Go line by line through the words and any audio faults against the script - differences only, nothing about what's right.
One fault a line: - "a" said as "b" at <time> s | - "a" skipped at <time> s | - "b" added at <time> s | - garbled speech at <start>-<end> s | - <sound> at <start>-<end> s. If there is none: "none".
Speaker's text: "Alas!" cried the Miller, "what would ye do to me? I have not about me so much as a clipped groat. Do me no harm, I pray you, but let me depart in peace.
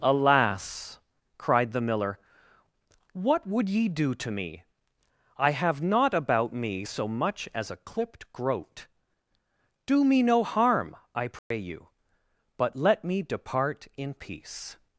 - dropout at 11.4-11.5 s